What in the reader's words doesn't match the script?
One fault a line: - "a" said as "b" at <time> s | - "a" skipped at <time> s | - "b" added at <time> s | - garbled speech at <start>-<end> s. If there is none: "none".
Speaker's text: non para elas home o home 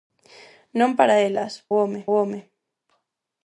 none